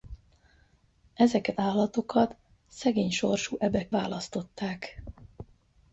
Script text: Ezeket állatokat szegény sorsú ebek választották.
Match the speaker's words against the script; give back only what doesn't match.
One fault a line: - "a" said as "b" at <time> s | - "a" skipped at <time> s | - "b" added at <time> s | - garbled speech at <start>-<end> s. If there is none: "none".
none